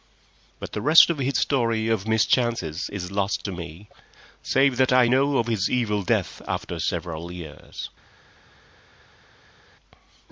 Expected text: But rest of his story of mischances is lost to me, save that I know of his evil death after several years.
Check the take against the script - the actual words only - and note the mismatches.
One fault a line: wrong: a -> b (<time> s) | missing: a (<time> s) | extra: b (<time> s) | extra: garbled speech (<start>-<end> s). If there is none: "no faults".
extra: the (0.7 s)